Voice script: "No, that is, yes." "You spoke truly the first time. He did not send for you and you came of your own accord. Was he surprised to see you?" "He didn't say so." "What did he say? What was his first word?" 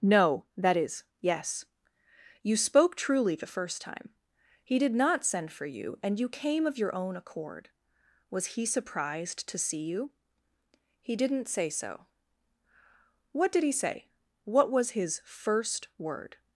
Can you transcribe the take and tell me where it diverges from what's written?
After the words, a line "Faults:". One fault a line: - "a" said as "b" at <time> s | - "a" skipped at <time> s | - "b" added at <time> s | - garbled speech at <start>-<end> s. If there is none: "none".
"No, that is, yes." "You spoke truly the first time. He did not send for you and you came of your own accord. Was he surprised to see you?" "He didn't say so." "What did he say? What was his first word?"
Faults:
none